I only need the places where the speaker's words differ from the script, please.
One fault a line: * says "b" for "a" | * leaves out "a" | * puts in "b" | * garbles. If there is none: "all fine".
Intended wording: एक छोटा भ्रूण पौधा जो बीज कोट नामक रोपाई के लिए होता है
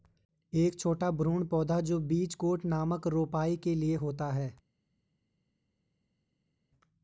all fine